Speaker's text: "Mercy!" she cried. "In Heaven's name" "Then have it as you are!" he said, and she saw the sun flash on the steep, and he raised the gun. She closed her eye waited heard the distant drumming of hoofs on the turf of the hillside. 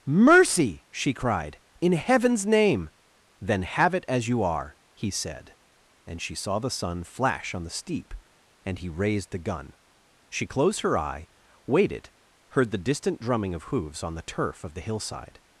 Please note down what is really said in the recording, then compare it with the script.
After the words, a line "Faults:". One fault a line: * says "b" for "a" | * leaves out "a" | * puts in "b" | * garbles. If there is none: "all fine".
"Mercy!" she cried. "In Heaven's name" "Then have it as you are!" he said, and she saw the sun flash on the steep, and he raised the gun. She closed her eye waited heard the distant drumming of hoofs on the turf of the hillside.
Faults:
all fine